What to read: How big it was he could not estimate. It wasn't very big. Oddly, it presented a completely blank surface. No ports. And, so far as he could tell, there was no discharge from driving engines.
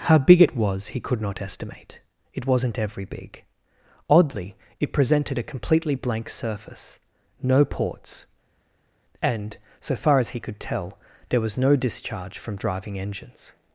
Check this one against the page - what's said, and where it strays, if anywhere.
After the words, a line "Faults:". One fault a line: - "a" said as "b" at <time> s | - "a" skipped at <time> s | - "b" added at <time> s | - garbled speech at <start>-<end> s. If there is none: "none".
How big it was he could not estimate. It wasn't every big. Oddly, it presented a completely blank surface. No ports. And, so far as he could tell, there was no discharge from driving engines.
Faults:
- "very" said as "every" at 2.8 s